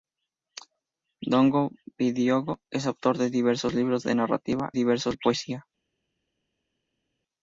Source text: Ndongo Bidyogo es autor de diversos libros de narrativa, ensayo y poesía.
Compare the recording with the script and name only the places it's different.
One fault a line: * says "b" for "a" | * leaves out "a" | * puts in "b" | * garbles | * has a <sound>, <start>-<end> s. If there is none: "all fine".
* says "diversos" for "ensayo"